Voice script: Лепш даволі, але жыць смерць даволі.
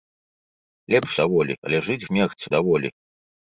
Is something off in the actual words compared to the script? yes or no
no